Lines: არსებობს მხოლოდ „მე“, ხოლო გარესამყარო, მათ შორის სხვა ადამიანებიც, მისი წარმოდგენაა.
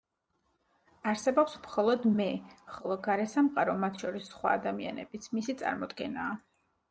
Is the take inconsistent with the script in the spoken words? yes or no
no